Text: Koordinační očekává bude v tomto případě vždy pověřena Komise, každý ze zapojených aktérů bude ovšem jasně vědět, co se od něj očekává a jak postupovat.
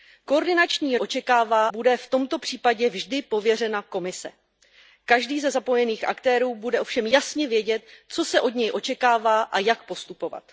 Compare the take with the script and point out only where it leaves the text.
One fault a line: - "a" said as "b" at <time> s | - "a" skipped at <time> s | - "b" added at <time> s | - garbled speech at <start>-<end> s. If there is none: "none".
none